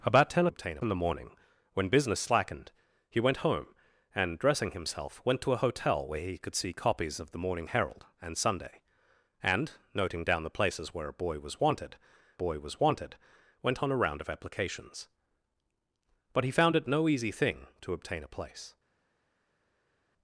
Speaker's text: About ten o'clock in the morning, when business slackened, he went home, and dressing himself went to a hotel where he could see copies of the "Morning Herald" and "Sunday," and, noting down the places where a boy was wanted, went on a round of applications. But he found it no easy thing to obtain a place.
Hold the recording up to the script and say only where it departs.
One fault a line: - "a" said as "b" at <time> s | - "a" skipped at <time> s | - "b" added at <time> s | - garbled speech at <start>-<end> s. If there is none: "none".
- "o'clock" said as "obtain" at 0.5 s
- "boy was wanted" added at 12.4 s